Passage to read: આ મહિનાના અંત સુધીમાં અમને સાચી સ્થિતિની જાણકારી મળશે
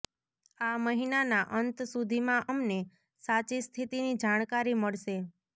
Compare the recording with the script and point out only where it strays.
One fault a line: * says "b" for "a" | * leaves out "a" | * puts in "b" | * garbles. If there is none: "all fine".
all fine